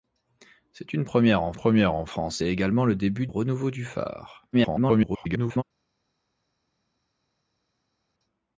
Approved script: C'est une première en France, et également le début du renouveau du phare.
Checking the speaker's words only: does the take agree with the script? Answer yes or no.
no